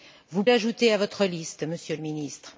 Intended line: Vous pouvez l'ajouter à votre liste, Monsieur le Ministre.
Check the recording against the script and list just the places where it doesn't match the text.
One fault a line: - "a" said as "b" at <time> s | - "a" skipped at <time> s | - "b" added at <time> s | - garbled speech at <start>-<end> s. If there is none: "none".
- "pouvez" skipped at 0.4 s